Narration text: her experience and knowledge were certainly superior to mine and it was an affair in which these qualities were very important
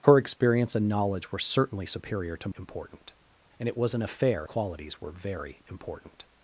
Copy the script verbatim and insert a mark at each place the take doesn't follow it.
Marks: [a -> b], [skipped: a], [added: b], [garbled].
her experience and knowledge were certainly superior to [mine -> important] and it was an affair [skipped: in which these] qualities were very important